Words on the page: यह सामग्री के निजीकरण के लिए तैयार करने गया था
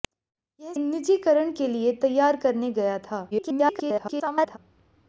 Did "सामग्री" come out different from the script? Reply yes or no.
yes